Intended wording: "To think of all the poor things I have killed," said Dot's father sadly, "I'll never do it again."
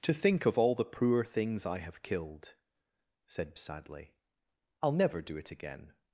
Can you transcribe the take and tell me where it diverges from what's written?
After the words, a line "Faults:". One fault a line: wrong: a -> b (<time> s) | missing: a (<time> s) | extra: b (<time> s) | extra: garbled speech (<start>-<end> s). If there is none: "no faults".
"To think of all the poor things I have killed," said Sadly, "I'll never do it again."
Faults:
missing: Dot's father (3.5 s)